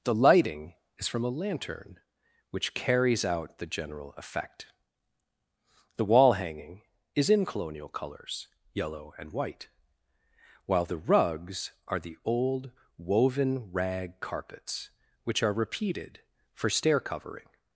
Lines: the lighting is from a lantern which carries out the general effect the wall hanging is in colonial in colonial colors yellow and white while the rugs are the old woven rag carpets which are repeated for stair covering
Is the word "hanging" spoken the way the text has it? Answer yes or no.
yes